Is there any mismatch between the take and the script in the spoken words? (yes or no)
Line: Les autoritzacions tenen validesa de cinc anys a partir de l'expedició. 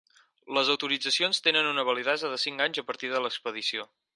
yes